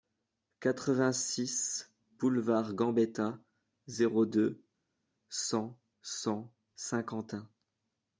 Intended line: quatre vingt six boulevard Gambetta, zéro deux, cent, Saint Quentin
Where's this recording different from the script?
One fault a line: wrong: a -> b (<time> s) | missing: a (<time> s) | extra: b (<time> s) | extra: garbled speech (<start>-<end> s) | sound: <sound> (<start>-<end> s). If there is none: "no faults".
extra: cent (6.0 s)